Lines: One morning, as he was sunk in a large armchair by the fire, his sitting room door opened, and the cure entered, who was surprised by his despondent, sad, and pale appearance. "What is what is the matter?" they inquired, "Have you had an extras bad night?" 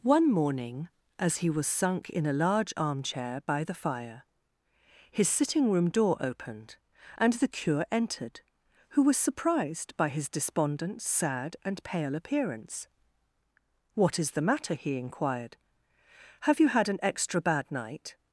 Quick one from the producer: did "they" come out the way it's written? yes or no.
no